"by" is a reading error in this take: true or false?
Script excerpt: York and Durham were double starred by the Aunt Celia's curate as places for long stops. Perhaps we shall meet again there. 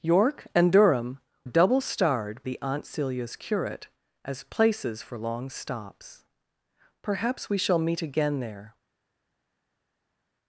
true